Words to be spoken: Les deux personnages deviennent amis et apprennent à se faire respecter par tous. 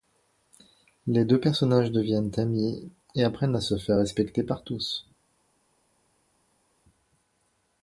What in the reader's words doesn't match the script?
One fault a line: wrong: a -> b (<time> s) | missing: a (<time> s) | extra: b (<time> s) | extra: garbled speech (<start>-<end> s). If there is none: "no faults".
no faults